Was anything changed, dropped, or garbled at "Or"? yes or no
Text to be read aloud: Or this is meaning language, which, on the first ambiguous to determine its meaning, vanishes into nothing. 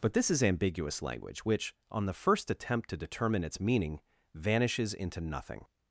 yes